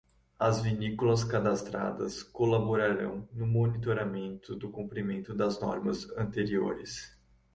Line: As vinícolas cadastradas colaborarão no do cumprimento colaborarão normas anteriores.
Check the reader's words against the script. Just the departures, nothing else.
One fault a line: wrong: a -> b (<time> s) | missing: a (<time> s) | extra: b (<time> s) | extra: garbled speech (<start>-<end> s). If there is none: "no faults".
extra: monitoramento (3.5 s)
wrong: colaborarão -> das (5.3 s)